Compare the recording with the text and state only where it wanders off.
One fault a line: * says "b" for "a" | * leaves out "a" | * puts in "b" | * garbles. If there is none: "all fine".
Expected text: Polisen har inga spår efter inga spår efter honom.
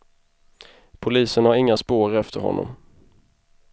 * leaves out "inga spår efter"